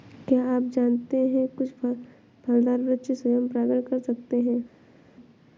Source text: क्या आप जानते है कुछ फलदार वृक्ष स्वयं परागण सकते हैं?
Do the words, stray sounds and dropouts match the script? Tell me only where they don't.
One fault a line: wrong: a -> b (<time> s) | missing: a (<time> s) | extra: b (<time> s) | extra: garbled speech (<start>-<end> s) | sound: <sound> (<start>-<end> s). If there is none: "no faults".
extra: कर (3.8 s)